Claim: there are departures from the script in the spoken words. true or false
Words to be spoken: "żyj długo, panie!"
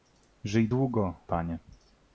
false